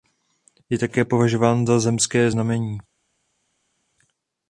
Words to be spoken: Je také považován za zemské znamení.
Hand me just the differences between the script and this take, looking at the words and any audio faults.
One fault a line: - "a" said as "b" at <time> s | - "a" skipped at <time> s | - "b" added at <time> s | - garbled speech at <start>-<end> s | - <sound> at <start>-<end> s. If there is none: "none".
none